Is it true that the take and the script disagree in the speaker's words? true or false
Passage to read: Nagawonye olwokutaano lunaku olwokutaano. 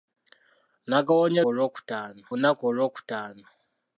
false